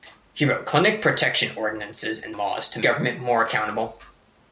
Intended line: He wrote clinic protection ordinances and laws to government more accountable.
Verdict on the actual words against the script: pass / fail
pass